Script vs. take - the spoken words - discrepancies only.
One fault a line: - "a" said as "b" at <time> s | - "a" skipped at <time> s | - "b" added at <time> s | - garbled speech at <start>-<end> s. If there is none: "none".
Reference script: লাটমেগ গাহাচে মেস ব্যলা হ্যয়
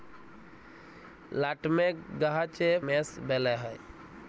none